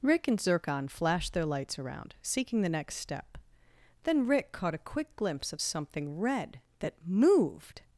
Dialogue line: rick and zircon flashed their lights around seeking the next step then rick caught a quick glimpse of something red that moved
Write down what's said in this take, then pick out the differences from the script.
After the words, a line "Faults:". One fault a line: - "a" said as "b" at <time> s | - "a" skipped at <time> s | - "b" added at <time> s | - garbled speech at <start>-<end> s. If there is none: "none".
rick and zircon flashed their lights around seeking the next step then rick caught a quick glimpse of something red that moved
Faults:
none